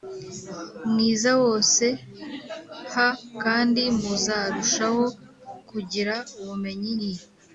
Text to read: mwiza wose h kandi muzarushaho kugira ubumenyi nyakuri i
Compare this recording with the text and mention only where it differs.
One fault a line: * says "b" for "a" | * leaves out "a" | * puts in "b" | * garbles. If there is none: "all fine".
* leaves out "nyakuri"